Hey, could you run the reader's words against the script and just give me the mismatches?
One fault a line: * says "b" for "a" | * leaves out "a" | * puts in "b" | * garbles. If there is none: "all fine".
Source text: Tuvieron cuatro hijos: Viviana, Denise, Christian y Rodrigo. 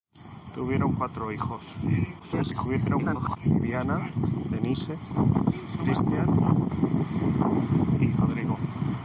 * garbles